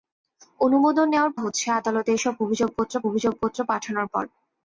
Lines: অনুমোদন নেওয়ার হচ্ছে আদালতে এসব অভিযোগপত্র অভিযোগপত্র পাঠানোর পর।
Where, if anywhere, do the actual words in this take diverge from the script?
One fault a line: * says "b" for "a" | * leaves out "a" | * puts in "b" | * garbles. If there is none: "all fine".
all fine